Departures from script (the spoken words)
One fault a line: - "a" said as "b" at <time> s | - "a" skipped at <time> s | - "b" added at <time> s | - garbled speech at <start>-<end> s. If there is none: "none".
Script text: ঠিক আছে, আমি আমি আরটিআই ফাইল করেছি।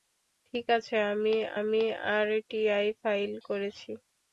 none